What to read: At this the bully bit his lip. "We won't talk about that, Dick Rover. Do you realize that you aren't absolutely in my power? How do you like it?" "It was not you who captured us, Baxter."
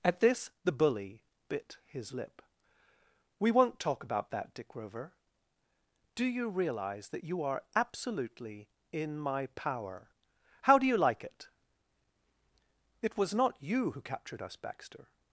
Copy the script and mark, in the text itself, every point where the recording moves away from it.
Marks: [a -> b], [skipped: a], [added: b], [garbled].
At this the bully bit his lip. "We won't talk about that, Dick Rover. Do you realize that you [aren't -> are] absolutely in my power? How do you like it?" "It was not you who captured us, Baxter."